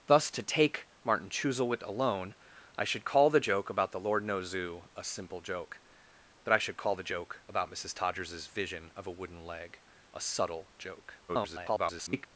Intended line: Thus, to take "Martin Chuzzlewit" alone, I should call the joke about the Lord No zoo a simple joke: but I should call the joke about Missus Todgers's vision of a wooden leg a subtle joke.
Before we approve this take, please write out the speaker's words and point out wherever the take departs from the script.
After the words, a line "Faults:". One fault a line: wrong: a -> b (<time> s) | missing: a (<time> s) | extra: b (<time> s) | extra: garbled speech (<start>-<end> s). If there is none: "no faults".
Thus, to take "Martin Chuzzlewit" alone, I should call the joke about the Lord No zoo a simple joke: but I should call the joke about Missus Todgers's vision of a wooden leg a subtle joke. [garbled]
Faults:
extra: garbled speech (11.3-12.3 s)